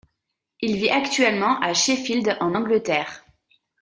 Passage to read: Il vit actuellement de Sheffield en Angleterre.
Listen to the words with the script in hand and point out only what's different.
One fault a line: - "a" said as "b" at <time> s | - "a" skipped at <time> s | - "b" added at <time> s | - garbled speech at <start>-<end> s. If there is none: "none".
- "de" said as "à" at 1.6 s